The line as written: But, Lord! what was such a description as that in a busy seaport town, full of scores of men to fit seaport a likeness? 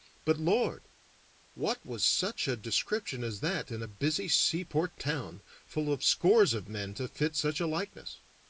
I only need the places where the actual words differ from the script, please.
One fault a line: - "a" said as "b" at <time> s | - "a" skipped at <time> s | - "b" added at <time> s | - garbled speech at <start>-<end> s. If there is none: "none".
- "seaport" said as "such" at 7.4 s